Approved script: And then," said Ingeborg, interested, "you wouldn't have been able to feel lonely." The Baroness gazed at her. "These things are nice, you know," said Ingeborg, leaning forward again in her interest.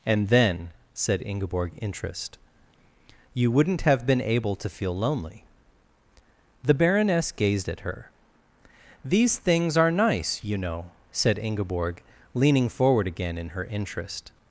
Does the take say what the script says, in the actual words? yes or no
no